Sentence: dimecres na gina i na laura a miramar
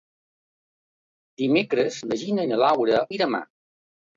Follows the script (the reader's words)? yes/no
yes